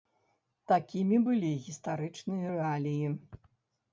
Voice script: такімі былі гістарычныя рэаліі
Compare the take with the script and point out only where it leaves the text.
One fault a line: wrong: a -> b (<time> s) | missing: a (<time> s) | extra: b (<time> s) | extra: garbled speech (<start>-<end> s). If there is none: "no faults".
no faults